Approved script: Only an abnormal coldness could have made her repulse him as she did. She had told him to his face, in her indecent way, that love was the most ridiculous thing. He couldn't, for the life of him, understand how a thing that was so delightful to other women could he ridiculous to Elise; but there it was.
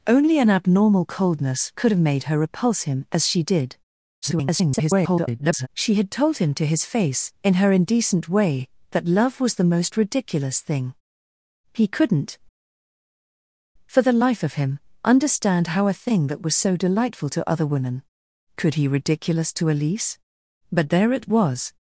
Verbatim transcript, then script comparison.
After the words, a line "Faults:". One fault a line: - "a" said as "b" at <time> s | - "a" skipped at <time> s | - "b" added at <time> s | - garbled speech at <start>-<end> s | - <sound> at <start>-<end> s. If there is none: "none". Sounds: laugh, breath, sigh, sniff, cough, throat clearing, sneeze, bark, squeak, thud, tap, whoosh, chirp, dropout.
Only an abnormal coldness could have made her repulse him as she did. [garbled] She had told him to his face, in her indecent way, that love was the most ridiculous thing. He couldn't, for the life of him, understand how a thing that was so delightful to other women could he ridiculous to Elise; but there it was.
Faults:
- garbled speech at 4.2-5.7 s